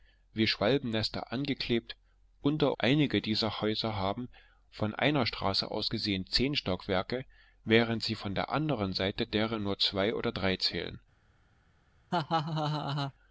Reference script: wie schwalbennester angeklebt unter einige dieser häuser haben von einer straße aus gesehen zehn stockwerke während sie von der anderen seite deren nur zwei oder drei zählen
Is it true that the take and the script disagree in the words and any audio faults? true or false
true